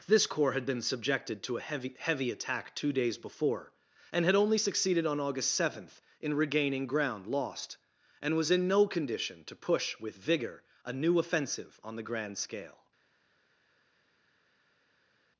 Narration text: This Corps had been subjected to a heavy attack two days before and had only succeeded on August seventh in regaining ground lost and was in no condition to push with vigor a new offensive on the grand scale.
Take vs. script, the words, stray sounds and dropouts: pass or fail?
fail